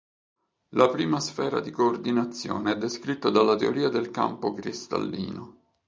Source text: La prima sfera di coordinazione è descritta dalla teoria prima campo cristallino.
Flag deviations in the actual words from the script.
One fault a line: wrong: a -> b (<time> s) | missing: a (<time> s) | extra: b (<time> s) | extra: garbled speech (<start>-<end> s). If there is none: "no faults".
wrong: prima -> del (3.9 s)